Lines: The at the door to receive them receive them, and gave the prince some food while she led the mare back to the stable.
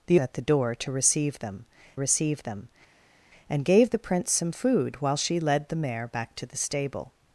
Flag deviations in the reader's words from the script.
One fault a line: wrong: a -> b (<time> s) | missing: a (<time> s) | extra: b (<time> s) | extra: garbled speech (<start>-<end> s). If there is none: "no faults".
no faults